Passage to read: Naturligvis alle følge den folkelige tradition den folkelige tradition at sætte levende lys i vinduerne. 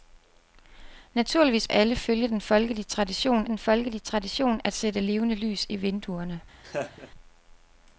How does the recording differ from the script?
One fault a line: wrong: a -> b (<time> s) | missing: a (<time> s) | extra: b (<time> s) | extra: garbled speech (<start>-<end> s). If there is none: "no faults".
no faults